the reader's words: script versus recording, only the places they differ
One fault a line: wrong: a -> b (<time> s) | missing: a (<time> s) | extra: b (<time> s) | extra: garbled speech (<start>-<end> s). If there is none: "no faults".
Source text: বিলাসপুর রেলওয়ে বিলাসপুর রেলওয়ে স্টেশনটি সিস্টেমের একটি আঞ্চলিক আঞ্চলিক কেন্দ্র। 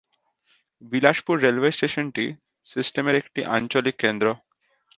missing: বিলাসপুর রেলওয়ে (1.7 s)
missing: আঞ্চলিক (3.9 s)